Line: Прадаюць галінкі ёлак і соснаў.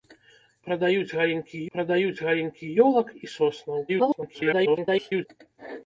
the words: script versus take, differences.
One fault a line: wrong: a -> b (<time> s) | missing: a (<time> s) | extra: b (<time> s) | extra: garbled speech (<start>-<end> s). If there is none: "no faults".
extra: прадаюць галінкі (1.7 s)
extra: garbled speech (3.9-5.3 s)